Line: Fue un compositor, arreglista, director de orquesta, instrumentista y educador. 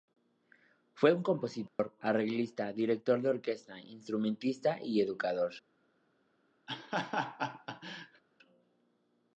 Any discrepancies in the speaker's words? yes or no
no